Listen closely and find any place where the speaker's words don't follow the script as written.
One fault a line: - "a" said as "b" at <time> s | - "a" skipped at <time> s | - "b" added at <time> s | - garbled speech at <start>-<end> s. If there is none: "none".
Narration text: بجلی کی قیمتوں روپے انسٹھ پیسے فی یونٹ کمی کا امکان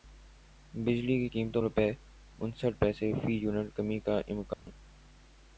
none